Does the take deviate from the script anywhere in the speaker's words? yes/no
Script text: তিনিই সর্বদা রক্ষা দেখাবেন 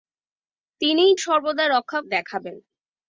no